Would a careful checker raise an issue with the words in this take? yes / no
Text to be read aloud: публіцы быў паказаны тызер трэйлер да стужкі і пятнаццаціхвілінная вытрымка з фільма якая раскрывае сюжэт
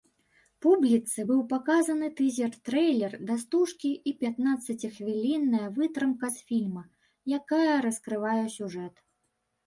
no